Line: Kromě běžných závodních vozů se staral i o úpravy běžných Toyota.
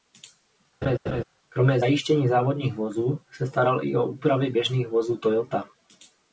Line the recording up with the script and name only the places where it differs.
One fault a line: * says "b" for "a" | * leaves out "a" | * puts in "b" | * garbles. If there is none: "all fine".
* says "zajištění" for "běžných"
* puts in "vozů"